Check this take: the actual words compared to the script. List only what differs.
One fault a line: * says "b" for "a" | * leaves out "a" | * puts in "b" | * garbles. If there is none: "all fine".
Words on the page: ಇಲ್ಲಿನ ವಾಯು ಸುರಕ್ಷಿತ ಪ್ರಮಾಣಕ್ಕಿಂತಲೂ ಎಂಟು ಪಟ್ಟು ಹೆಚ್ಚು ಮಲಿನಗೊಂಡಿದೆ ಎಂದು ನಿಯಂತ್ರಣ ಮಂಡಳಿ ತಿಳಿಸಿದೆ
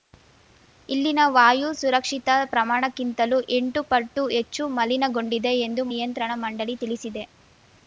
all fine